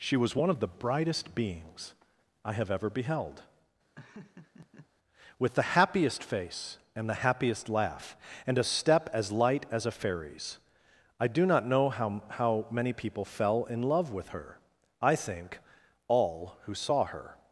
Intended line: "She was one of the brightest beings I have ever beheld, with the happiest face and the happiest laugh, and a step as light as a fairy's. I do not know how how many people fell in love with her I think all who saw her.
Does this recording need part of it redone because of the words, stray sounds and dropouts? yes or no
yes